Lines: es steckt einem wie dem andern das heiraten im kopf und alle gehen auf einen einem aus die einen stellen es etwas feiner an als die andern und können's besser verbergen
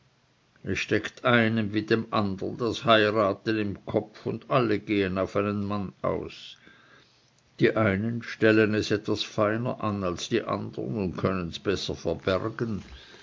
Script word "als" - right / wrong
right